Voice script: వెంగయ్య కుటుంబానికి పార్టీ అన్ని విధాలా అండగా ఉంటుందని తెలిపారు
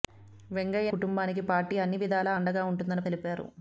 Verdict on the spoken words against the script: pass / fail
pass